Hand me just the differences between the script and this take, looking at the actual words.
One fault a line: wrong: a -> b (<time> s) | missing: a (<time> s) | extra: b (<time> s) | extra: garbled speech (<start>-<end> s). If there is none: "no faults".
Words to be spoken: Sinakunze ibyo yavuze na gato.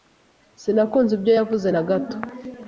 no faults